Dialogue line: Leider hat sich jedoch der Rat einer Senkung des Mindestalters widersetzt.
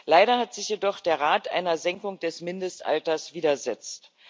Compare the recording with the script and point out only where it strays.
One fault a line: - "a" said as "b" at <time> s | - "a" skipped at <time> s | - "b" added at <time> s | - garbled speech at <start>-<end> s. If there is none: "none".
none